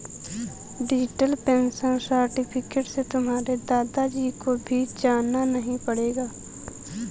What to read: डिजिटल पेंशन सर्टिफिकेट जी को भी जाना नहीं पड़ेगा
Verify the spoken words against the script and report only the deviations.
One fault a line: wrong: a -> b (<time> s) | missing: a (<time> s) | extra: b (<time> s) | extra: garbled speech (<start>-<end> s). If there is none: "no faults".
extra: से तुम्हारे दादा (2.9 s)